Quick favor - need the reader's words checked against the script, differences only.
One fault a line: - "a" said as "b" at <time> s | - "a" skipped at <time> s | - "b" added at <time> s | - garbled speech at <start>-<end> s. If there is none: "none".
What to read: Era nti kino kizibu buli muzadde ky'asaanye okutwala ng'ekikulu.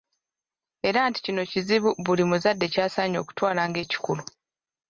none